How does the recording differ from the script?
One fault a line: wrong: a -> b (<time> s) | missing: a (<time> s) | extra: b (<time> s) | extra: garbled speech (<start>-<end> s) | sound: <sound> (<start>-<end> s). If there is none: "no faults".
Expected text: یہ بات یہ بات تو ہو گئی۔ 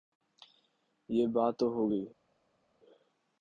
missing: یہ بات (1.5 s)